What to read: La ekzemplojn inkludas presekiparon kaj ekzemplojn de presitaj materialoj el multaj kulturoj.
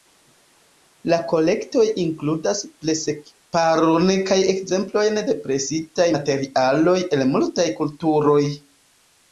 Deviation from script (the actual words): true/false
true